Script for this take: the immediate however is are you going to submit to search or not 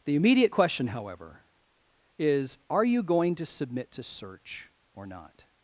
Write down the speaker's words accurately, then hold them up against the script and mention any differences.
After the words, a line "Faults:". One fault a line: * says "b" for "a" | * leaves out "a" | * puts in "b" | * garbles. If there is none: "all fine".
the immediate question however is are you going to submit to search or not
Faults:
* puts in "question"